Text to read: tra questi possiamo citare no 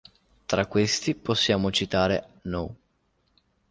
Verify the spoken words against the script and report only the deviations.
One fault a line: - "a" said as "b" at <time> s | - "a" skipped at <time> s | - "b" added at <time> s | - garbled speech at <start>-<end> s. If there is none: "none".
none